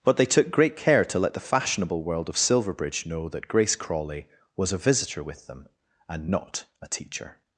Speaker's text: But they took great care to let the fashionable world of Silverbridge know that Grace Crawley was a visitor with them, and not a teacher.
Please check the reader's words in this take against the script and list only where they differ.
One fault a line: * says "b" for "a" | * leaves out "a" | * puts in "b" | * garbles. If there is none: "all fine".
all fine